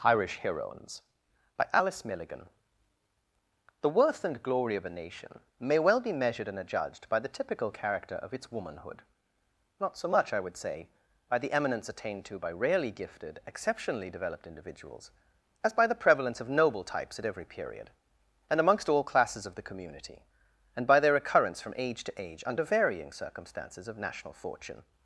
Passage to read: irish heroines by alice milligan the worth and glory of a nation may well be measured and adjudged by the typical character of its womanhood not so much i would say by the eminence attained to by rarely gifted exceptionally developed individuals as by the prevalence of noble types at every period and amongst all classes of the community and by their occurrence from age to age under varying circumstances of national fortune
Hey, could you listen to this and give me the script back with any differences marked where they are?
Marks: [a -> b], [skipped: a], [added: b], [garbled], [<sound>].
irish heroines by alice milligan the worth and glory of a nation may well be measured and adjudged by the typical character of its womanhood not so much i would say by the eminence attained to by rarely gifted exceptionally developed individuals as by the prevalence of noble types at every period and amongst all classes of the community and by their occurrence from age to age under varying circumstances of national fortune